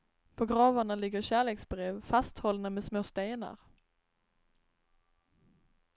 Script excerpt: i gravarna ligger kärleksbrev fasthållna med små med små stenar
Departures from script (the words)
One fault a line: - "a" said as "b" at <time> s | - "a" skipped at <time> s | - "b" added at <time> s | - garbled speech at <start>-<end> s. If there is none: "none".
- "i" said as "på" at 0.3 s
- "med små" skipped at 3.0 s